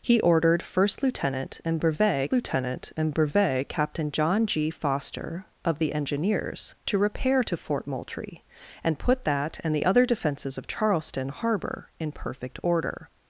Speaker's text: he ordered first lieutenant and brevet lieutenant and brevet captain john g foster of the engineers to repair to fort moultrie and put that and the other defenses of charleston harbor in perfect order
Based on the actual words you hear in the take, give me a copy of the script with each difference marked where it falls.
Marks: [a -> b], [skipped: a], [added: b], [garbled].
he ordered first lieutenant and brevet lieutenant and brevet captain john g foster of the engineers to repair to fort moultrie and put that and the other defenses of charleston harbor in perfect order